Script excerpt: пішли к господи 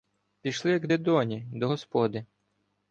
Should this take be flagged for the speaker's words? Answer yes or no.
yes